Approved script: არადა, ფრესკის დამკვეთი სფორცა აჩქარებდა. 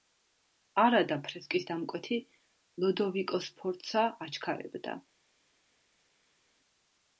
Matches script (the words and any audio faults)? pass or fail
fail